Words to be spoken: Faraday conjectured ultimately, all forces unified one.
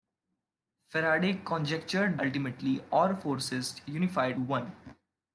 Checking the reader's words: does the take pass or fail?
pass